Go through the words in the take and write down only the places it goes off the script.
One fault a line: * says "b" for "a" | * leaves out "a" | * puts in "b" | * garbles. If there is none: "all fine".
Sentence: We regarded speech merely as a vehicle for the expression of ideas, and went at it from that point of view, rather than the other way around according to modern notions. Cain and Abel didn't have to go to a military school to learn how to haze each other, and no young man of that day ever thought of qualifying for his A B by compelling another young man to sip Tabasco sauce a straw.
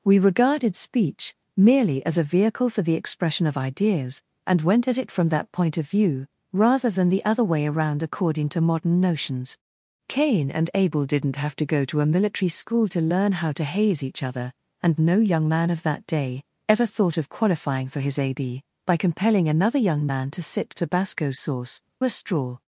all fine